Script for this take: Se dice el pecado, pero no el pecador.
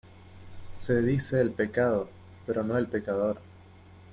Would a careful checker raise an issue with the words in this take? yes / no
no